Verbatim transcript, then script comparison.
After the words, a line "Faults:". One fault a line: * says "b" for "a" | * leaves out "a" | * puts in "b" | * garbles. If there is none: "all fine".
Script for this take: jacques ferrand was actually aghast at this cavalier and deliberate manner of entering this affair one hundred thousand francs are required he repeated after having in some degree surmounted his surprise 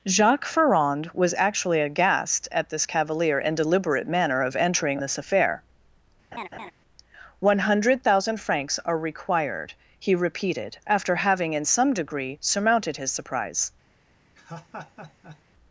jacques ferrand was actually aghast at this cavalier and deliberate manner of entering this affair one hundred thousand francs are required he repeated after having in some degree surmounted his surprise
Faults:
all fine